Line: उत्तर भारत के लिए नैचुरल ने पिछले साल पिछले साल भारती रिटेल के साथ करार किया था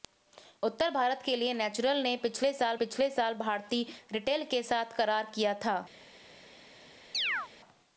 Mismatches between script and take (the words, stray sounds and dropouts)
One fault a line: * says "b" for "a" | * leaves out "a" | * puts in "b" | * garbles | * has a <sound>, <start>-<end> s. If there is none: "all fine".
* has a chirp, 7.1-7.5 s